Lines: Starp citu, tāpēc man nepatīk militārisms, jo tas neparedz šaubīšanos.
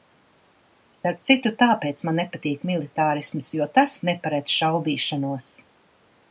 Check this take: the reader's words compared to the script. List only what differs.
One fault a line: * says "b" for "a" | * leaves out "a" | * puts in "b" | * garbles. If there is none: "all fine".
all fine